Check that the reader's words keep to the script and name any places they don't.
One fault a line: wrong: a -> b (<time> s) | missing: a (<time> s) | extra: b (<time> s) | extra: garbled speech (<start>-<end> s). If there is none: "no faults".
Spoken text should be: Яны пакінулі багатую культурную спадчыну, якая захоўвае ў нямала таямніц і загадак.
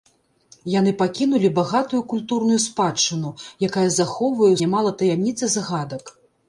no faults